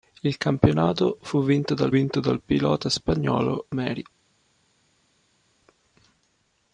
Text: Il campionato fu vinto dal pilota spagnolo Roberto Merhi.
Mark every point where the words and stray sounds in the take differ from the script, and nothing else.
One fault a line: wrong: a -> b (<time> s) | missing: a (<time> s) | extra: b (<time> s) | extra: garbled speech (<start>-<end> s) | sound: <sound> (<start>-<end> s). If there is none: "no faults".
extra: vinto dal (1.9 s)
missing: Roberto (3.6 s)